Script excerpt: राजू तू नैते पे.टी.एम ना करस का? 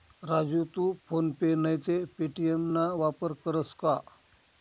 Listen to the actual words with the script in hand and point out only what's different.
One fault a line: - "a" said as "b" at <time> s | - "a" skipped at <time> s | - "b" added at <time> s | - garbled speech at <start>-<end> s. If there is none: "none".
- "फोन पे" added at 1.1 s
- "वापर" added at 3.0 s